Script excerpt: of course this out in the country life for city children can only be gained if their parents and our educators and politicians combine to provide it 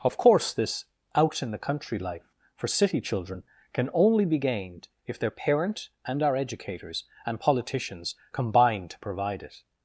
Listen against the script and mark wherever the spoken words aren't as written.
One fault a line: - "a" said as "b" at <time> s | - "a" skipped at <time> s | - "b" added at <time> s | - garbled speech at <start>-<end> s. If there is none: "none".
- "parents" said as "parent" at 5.3 s